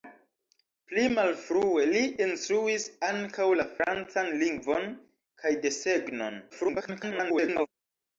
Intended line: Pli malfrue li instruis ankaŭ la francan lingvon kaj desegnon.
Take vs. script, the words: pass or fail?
fail